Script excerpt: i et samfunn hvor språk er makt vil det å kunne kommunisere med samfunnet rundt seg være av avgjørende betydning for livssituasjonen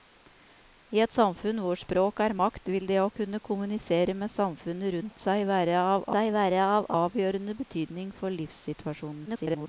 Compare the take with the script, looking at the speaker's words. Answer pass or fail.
fail